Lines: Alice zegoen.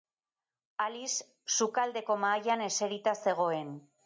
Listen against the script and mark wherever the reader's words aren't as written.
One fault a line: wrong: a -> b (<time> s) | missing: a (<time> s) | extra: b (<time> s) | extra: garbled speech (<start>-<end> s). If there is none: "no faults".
extra: sukaldeko mahaian eserita (1.6 s)